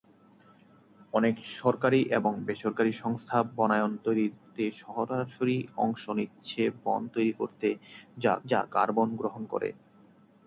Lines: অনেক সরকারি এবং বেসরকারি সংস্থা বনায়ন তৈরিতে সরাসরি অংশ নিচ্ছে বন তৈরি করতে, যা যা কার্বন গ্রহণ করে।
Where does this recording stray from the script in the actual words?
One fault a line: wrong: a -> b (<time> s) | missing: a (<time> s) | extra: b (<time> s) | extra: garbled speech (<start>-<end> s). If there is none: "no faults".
no faults